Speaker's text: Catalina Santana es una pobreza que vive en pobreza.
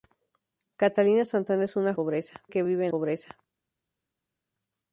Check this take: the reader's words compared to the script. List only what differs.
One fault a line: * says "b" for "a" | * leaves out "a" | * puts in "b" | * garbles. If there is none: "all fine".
all fine